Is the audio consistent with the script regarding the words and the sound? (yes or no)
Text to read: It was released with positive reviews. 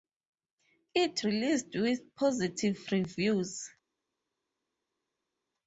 no